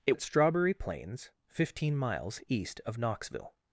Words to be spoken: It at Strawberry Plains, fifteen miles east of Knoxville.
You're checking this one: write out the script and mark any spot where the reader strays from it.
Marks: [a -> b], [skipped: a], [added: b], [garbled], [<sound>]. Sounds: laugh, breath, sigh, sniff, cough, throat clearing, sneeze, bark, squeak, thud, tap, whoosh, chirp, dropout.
It at Strawberry Plains, fifteen miles east of Knoxville.